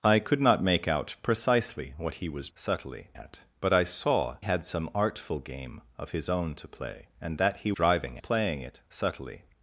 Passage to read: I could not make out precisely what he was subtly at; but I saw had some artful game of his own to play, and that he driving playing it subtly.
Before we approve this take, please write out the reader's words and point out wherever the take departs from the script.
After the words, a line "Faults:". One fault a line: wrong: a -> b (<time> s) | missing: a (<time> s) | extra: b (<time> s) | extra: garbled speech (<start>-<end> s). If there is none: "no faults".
I could not make out precisely what he was subtly at; but I saw had some artful game of his own to play, and that he driving playing it subtly.
Faults:
no faults